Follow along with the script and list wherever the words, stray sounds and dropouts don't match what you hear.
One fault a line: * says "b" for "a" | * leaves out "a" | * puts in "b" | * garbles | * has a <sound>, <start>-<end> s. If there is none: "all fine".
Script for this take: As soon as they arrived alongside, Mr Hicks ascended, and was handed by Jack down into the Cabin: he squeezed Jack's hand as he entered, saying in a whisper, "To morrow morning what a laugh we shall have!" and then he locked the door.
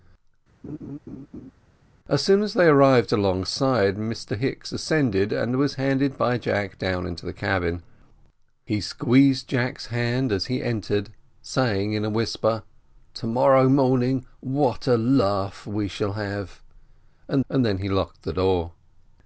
* has a laugh, 0.6-1.5 s
* puts in "and"